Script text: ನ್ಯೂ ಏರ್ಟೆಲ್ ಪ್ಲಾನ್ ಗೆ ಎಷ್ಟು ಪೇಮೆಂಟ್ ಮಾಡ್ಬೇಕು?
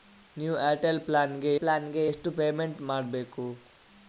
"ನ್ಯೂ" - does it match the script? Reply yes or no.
yes